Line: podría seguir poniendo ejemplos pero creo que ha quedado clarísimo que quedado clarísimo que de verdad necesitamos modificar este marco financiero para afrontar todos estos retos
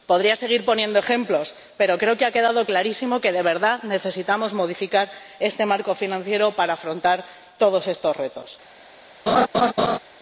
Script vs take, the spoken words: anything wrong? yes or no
yes